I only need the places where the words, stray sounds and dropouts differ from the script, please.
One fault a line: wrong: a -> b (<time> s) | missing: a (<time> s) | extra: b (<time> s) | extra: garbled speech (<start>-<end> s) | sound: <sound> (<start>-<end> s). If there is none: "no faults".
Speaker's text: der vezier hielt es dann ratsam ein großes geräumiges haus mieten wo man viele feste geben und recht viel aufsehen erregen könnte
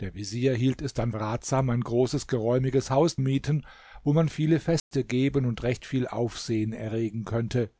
sound: dropout (4.8-4.9 s)